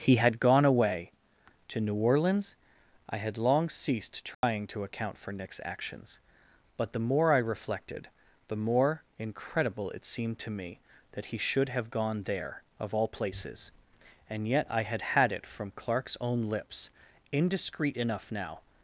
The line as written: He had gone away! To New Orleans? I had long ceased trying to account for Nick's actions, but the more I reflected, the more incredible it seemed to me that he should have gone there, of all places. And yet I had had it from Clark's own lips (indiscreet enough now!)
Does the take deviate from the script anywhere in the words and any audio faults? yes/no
yes